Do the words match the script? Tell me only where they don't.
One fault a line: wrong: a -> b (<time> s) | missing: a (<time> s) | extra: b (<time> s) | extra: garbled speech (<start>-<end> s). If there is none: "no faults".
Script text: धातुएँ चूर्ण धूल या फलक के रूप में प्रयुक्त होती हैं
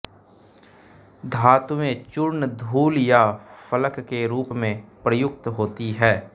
no faults